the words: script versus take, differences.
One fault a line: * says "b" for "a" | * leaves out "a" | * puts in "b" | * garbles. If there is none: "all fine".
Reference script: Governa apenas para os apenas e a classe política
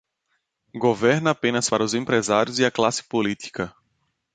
* says "empresários" for "apenas"